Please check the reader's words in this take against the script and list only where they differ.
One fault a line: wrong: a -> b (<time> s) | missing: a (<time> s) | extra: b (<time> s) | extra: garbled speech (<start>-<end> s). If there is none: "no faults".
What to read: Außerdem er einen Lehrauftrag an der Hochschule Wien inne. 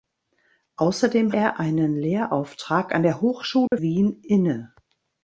no faults